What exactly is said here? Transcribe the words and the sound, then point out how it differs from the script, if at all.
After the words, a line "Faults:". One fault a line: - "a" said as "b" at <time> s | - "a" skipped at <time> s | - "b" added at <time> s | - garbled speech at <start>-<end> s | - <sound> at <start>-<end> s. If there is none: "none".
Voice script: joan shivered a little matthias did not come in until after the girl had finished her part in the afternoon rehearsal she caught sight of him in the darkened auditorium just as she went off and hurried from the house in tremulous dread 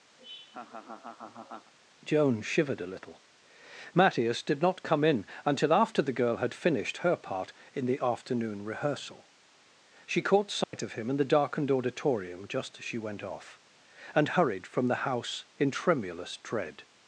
joan shivered a little matthias did not come in until after the girl had finished her part in the afternoon rehearsal she caught sight of him in the darkened auditorium just as she went off and hurried from the house in tremulous dread
Faults:
- laugh at 0.2-1.7 s
- dropout at 10.6-10.7 s